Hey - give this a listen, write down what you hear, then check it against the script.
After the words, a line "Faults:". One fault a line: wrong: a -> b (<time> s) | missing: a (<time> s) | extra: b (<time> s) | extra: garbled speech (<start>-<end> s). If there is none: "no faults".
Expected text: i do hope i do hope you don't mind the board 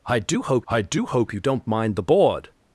i do hope i do hope you don't mind the board
Faults:
no faults